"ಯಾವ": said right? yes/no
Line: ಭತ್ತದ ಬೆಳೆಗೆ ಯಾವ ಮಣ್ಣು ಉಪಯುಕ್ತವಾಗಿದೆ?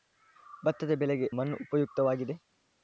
no